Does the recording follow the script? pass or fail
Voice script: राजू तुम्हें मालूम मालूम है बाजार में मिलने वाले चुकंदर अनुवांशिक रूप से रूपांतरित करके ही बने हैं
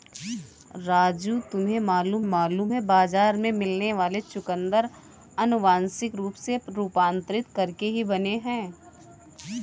pass